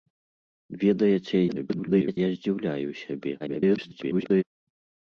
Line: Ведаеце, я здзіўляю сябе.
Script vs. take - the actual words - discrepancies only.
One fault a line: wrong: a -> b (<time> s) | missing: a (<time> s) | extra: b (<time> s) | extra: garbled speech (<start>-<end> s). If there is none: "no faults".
extra: garbled speech (1.5-2.2 s)
extra: garbled speech (3.4-4.4 s)